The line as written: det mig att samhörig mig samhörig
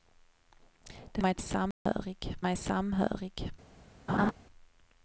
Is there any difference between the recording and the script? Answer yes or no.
no